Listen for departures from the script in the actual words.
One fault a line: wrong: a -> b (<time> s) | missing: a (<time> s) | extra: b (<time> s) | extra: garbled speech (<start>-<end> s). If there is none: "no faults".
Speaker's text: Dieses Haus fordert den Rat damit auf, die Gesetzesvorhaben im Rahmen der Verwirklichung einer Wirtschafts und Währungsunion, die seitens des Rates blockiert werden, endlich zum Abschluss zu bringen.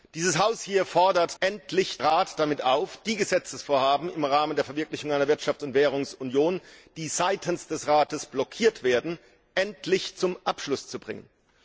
wrong: den -> endlich (1.4 s)